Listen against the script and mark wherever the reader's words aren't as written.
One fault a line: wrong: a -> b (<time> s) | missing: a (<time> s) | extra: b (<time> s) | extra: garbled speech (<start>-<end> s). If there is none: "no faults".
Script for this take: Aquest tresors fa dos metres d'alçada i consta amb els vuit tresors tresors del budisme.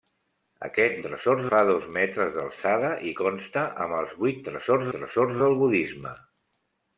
no faults